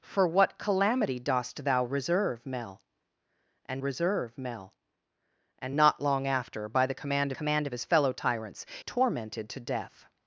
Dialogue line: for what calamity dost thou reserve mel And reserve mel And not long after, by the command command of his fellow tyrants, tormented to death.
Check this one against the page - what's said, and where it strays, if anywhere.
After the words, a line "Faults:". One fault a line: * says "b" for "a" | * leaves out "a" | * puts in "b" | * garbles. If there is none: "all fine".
for what calamity dost thou reserve mel And reserve mel And not long after, by the command command of his fellow tyrants, tormented to death.
Faults:
all fine